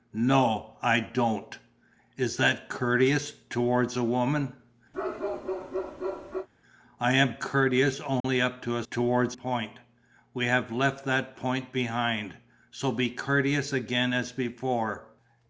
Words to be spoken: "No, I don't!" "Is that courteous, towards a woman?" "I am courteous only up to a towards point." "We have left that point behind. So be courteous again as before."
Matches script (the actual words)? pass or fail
pass